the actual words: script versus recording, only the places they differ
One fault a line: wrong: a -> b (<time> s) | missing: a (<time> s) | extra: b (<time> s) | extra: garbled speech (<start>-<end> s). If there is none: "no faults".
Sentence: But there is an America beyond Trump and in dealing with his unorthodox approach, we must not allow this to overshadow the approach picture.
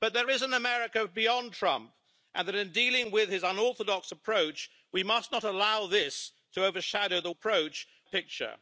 no faults